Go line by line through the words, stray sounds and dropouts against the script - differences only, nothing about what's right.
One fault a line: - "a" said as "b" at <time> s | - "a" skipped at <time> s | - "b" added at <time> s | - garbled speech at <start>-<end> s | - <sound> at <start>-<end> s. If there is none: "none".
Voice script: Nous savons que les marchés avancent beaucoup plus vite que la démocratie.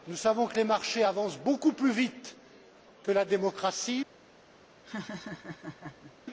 - laugh at 4.8-6.1 s